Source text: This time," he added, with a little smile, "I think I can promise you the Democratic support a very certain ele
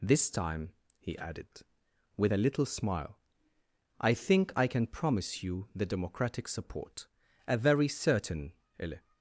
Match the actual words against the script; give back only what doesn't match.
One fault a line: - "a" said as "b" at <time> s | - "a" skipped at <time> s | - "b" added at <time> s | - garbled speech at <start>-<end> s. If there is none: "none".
none